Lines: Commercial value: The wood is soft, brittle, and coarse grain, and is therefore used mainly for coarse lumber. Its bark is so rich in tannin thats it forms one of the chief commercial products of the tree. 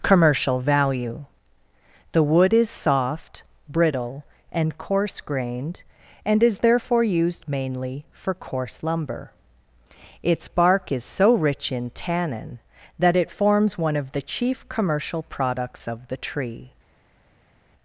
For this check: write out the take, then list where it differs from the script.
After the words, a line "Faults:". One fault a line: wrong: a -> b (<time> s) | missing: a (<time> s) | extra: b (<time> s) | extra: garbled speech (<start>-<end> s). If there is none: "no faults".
Commercial value: The wood is soft, brittle, and coarse grained, and is therefore used mainly for coarse lumber. Its bark is so rich in tannin that it forms one of the chief commercial products of the tree.
Faults:
wrong: grain -> grained (5.2 s)
wrong: thats -> that (13.0 s)